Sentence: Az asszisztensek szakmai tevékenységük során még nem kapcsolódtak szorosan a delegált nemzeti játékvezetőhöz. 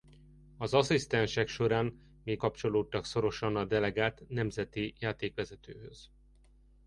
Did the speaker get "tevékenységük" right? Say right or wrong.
wrong